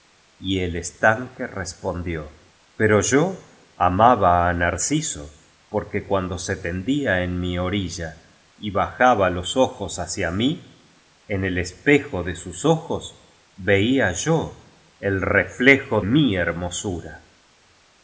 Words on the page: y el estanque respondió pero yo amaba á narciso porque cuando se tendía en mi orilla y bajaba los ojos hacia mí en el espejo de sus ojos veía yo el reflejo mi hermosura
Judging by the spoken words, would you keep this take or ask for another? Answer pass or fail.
pass